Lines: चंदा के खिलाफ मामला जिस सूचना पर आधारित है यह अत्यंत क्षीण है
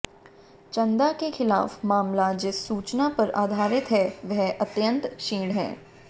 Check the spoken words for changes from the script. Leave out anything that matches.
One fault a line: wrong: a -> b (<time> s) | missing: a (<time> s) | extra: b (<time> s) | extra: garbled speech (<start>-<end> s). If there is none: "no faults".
wrong: यह -> वह (4.3 s)